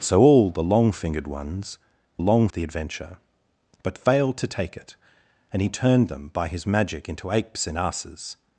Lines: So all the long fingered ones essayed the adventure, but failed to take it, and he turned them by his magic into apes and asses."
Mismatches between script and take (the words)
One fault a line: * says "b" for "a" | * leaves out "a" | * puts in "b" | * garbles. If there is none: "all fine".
* says "long" for "essayed"